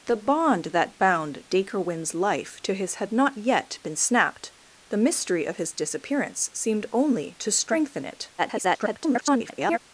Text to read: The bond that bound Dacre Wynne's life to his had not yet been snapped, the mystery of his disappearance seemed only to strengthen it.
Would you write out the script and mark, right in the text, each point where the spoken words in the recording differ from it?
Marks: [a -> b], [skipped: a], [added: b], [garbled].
The bond that bound Dacre Wynne's life to his had not yet been snapped, the mystery of his disappearance seemed only to strengthen it. [garbled]